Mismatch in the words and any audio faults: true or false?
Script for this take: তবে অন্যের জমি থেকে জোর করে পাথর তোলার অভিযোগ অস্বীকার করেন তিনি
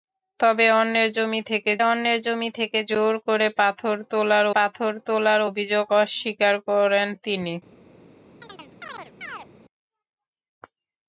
true